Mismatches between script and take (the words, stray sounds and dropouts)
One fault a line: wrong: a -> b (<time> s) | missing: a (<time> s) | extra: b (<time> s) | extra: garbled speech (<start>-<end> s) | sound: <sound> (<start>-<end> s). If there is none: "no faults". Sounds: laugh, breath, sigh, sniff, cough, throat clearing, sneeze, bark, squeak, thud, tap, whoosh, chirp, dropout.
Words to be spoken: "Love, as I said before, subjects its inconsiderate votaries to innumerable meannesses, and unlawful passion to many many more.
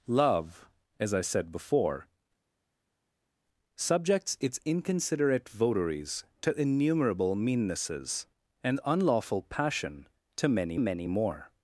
no faults